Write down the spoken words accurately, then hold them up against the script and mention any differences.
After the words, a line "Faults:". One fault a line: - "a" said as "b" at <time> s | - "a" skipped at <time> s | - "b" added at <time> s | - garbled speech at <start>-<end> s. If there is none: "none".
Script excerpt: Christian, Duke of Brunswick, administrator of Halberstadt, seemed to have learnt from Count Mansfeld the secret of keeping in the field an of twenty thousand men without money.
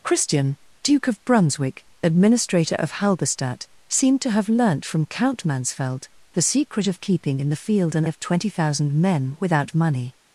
Christian, Duke of Brunswick, administrator of Halberstadt, seemed to have learnt from Count Mansfeld the secret of keeping in the field an of twenty thousand men without money.
Faults:
none